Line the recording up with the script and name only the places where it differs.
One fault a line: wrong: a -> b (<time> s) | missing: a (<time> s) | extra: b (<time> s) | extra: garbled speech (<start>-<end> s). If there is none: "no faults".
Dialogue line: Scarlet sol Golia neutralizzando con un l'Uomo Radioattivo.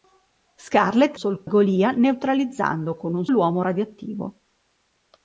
no faults